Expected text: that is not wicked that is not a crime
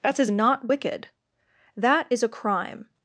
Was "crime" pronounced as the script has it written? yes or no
yes